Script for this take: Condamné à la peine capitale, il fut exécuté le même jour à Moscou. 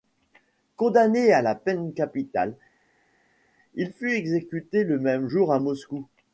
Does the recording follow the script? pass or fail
pass